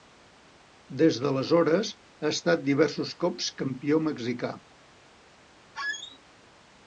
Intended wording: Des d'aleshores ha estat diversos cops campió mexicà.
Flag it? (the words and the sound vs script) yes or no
yes